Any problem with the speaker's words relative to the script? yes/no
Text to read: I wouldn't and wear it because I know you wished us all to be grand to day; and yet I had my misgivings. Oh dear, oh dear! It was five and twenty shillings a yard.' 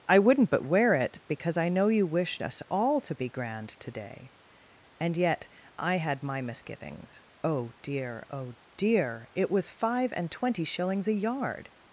yes